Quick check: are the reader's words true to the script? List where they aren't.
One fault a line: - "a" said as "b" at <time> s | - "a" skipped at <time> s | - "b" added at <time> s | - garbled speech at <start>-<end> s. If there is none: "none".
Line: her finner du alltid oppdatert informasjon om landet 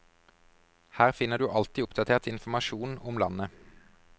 none